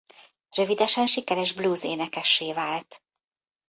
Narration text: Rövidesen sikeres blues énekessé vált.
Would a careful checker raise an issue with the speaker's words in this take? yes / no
no